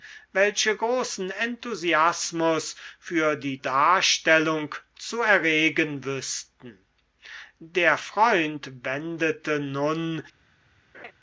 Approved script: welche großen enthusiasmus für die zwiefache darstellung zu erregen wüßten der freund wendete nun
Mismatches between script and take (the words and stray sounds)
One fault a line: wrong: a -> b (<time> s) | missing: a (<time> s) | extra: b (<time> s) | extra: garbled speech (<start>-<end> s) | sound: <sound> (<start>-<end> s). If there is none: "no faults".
missing: zwiefache (3.6 s)
sound: laugh (10.9-11.1 s)